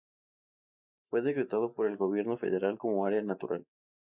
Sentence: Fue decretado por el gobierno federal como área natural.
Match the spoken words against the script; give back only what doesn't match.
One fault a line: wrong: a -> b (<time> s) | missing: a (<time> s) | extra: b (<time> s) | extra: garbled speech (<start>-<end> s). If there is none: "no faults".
no faults